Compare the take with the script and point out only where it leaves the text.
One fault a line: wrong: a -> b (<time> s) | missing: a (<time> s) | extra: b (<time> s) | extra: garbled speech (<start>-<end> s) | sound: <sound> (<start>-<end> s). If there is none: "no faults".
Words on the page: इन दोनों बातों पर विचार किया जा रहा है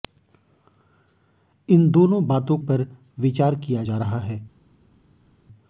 no faults